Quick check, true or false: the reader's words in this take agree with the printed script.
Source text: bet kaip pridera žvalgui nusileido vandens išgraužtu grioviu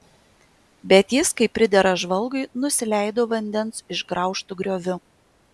false